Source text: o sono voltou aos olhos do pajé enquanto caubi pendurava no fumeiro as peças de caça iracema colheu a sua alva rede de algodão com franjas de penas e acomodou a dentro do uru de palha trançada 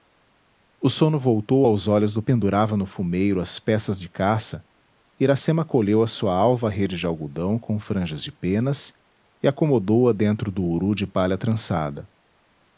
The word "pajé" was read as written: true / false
false